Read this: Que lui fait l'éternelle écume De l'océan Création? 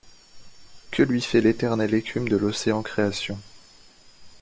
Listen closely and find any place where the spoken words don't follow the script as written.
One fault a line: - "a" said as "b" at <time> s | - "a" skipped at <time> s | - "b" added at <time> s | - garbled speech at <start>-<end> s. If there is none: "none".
none